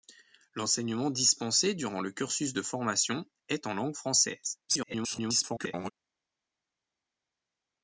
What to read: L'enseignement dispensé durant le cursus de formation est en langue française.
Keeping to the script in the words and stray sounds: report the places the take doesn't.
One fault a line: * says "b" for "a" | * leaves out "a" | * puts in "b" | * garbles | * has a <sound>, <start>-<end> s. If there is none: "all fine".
* garbles